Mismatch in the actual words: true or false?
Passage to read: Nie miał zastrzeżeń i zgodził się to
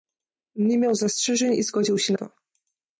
false